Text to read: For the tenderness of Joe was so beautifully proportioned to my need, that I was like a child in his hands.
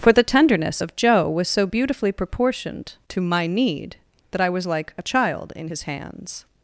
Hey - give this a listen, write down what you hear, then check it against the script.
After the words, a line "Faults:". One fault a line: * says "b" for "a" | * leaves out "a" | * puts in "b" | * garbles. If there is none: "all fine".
For the tenderness of Joe was so beautifully proportioned to my need, that I was like a child in his hands.
Faults:
all fine